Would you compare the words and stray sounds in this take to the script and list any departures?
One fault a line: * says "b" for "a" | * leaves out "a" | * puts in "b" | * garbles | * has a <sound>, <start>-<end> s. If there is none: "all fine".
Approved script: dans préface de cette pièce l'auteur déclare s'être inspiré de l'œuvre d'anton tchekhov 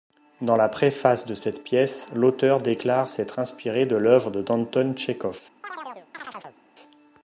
* puts in "la"
* has a chirp, 5.6-6.6 s